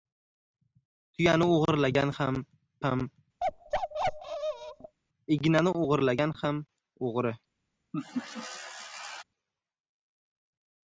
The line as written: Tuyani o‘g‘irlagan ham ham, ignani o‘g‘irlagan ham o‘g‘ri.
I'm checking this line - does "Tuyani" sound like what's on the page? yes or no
yes